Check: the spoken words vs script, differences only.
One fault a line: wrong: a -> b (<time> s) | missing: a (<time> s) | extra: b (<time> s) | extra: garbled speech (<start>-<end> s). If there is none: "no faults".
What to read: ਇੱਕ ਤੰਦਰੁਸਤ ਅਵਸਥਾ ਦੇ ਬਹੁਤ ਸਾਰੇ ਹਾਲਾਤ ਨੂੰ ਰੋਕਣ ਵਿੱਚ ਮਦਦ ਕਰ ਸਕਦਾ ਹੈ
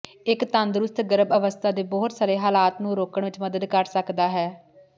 extra: ਗਰਭ (1.0 s)